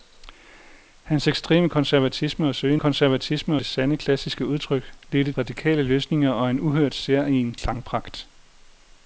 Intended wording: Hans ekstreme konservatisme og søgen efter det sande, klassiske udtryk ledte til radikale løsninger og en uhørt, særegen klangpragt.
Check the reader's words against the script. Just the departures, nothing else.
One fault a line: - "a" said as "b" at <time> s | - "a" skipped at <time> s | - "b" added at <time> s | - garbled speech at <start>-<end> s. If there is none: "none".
- "efter" said as "konservatisme" at 2.8 s
- "til" skipped at 5.3 s